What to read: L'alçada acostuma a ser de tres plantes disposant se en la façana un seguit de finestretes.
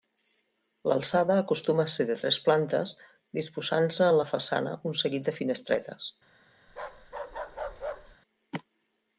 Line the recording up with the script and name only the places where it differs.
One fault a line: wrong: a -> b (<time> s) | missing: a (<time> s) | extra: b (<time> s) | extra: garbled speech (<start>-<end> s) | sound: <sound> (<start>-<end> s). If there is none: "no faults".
sound: bark (6.7-8.2 s)